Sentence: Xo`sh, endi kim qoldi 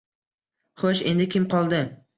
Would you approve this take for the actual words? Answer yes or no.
yes